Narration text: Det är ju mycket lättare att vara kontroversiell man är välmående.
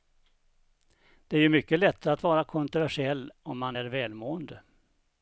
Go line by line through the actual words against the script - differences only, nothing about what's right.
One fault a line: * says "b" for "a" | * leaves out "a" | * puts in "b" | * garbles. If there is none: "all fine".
* puts in "om"